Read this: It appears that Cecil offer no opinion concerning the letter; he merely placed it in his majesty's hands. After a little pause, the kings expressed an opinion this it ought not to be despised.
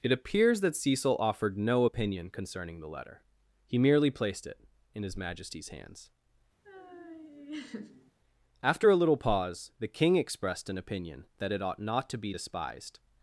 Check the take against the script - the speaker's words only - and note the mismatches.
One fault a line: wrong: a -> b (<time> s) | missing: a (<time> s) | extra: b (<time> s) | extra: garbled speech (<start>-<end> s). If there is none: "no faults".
wrong: offer -> offered (1.2 s)
wrong: kings -> king (9.9 s)
wrong: this -> that (11.4 s)